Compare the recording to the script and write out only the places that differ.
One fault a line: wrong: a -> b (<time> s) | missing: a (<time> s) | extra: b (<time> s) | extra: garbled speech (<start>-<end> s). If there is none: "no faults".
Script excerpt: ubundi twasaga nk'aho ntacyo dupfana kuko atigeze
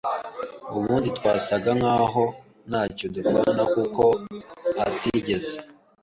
no faults